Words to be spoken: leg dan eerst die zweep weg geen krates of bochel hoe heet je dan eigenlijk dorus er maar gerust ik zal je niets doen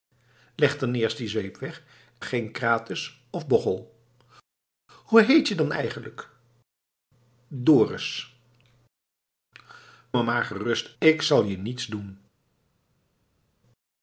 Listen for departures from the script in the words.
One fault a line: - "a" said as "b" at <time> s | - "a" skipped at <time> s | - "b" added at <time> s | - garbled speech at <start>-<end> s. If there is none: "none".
none